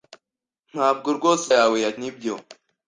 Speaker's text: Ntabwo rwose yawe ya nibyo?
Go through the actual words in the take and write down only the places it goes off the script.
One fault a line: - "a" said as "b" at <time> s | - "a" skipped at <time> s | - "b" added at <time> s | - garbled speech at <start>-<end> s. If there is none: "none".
none